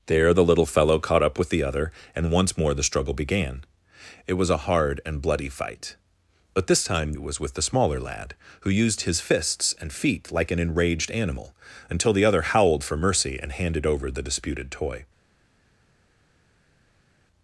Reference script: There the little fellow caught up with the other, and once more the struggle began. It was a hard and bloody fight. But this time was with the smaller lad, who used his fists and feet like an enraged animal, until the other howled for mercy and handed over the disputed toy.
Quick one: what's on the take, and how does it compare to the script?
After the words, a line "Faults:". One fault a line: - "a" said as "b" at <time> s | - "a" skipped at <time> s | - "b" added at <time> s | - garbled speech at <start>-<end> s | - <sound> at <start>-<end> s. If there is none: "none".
There the little fellow caught up with the other, and once more the struggle began. It was a hard and bloody fight. But this time was with the smaller lad, who used his fists and feet like an enraged animal, until the other howled for mercy and handed over the disputed toy.
Faults:
none